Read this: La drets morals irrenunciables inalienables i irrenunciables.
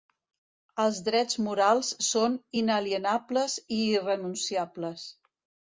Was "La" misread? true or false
true